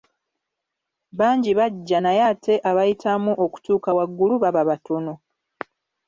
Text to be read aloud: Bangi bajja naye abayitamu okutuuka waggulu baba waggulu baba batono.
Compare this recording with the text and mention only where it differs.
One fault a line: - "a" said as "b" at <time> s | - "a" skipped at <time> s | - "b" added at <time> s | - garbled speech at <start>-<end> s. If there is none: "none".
- "ate" added at 2.3 s
- "waggulu baba" skipped at 4.6 s